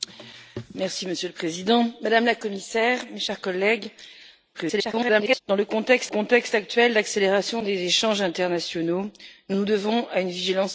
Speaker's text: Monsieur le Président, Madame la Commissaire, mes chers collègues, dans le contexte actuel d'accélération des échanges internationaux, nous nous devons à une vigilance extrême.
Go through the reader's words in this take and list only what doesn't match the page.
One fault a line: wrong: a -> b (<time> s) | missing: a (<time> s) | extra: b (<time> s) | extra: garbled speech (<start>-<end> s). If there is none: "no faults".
extra: garbled speech (4.5-5.4 s)
extra: contexte (6.1 s)